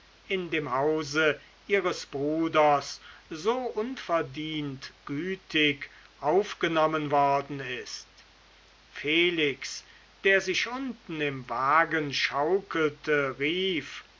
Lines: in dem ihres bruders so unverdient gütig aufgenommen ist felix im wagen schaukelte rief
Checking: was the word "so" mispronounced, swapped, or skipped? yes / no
no